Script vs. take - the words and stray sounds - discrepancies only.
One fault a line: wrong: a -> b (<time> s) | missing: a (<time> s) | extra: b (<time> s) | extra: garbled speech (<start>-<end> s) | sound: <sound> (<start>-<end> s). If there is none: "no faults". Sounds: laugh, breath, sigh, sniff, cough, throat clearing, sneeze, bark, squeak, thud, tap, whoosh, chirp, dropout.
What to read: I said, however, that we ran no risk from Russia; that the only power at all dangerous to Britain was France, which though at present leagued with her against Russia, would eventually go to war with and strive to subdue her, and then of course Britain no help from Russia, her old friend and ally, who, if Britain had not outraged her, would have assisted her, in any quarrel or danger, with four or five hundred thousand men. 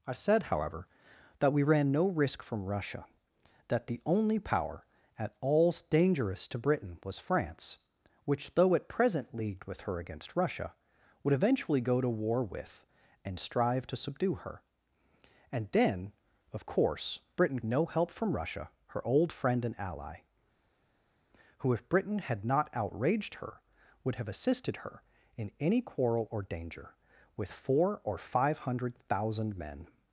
no faults